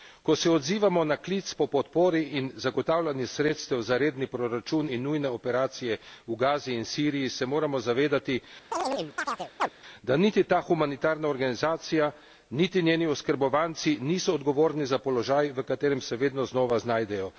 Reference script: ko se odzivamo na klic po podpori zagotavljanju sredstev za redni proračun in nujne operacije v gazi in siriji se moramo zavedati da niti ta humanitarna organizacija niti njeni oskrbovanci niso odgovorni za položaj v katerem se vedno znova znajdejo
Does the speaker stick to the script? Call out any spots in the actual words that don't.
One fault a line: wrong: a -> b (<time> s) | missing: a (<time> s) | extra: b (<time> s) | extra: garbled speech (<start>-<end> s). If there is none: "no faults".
extra: in (2.3 s)